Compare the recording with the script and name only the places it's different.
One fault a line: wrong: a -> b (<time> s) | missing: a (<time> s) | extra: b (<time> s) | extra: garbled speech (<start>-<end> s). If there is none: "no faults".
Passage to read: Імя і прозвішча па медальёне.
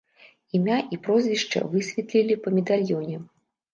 extra: высветлілі (1.7 s)